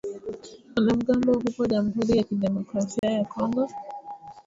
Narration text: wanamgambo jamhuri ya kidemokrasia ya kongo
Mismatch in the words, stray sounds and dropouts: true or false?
true